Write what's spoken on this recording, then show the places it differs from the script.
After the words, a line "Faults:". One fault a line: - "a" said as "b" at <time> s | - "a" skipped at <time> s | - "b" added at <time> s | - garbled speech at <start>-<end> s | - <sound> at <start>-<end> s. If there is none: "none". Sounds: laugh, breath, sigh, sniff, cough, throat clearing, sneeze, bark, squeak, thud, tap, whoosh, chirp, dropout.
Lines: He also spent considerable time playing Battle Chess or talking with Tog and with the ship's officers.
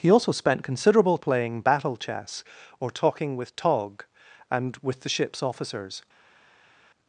He also spent considerable playing Battle Chess or talking with Tog and with the ship's officers.
Faults:
- "time" skipped at 1.2 s